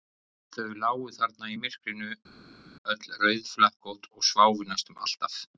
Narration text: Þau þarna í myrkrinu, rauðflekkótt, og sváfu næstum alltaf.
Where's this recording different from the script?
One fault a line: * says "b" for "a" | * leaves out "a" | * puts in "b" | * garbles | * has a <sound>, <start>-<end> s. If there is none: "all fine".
* puts in "lágu"
* puts in "öll"